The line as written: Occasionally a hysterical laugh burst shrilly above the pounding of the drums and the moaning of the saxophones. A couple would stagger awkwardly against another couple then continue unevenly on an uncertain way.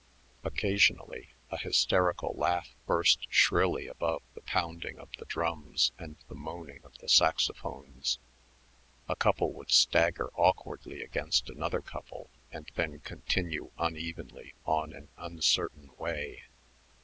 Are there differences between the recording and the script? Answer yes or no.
yes